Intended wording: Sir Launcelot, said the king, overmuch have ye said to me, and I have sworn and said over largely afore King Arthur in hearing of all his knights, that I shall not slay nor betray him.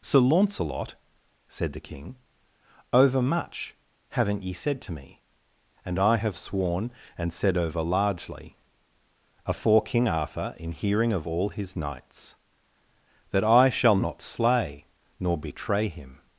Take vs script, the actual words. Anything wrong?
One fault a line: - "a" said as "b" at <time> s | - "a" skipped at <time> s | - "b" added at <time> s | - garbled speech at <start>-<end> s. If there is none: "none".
- "have" said as "haven't" at 4.1 s